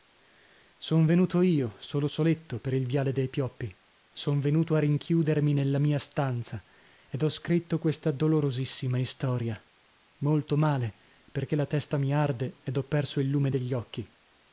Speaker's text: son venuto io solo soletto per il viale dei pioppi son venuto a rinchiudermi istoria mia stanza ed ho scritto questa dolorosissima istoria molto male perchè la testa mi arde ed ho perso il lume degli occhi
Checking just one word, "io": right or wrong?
right